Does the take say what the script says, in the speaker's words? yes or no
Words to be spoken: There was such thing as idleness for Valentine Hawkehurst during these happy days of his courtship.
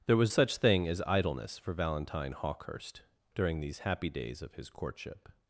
yes